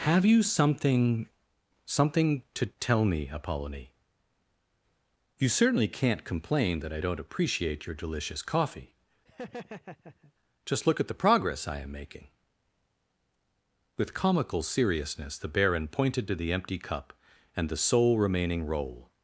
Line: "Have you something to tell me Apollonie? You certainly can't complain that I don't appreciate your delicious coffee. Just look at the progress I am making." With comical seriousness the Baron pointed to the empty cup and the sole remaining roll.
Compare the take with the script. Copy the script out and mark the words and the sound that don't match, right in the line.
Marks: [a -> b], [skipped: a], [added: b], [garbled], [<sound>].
"Have you something [added: something] to tell me Apollonie? You certainly can't complain that I don't appreciate your delicious coffee. [laugh] Just look at the progress I am making." With comical seriousness the Baron pointed to the empty cup and the sole remaining roll.